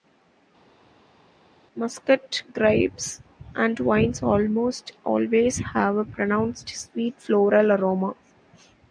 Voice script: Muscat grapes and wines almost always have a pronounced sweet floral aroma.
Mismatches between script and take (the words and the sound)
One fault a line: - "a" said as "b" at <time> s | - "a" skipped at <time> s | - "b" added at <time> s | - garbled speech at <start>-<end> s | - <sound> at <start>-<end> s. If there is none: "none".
none